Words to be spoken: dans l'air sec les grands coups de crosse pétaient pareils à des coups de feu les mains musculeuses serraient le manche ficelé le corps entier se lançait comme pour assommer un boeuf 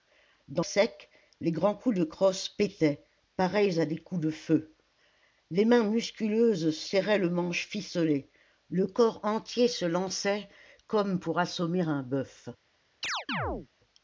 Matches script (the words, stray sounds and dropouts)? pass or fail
fail